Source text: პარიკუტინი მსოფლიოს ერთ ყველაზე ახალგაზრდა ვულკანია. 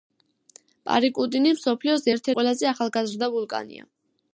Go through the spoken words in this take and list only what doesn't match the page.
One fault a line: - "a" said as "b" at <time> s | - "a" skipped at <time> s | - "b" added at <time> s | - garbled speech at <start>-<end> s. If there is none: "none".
none